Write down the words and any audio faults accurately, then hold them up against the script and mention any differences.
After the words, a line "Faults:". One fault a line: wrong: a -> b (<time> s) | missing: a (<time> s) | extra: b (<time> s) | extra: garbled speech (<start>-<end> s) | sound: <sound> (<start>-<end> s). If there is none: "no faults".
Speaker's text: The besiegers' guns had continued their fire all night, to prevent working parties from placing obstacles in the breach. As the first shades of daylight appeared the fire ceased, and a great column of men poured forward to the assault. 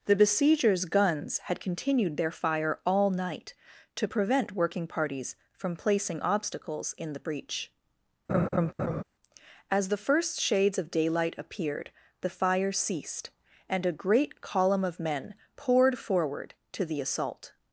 The besiegers' guns had continued their fire all night, to prevent working parties from placing obstacles in the breach. As the first shades of daylight appeared the fire ceased, and a great column of men poured forward to the assault.
Faults:
sound: laugh (8.3-9.0 s)